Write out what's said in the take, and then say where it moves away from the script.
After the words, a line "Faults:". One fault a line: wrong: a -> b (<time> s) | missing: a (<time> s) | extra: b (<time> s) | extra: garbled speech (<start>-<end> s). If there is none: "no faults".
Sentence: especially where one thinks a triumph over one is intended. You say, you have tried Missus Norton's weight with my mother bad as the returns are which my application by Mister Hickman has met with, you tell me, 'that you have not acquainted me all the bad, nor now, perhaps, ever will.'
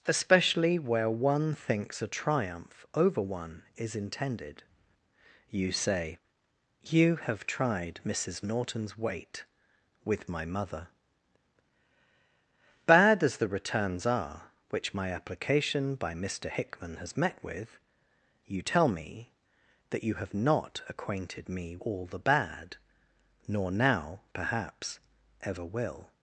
especially where one thinks a triumph over one is intended. You say, you have tried Missus Norton's weight with my mother bad as the returns are which my application by Mister Hickman has met with, you tell me, 'that you have not acquainted me all the bad, nor now, perhaps, ever will.'
Faults:
no faults